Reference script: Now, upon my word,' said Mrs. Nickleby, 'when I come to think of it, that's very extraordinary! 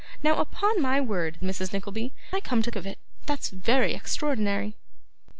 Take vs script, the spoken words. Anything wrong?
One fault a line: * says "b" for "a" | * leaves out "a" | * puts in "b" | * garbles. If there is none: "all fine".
* leaves out "said"
* leaves out "when"
* leaves out "think"